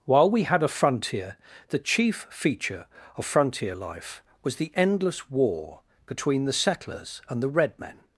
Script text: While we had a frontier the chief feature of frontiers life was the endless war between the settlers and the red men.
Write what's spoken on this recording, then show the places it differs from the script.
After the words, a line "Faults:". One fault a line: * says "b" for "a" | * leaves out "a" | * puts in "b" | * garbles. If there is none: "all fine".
While we had a frontier the chief feature of frontier life was the endless war between the settlers and the red men.
Faults:
* says "frontier" for "frontiers"